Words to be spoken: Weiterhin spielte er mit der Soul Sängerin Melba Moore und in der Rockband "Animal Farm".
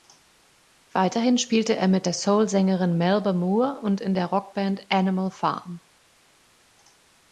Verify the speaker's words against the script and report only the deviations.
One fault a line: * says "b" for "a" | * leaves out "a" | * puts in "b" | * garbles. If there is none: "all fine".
all fine